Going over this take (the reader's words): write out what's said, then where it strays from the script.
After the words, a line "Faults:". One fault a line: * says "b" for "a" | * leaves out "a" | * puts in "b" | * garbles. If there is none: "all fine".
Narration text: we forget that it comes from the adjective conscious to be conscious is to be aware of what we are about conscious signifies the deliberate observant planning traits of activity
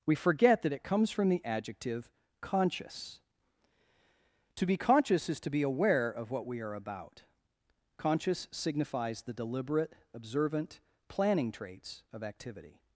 we forget that it comes from the adjective conscious to be conscious is to be aware of what we are about conscious signifies the deliberate observant planning traits of activity
Faults:
all fine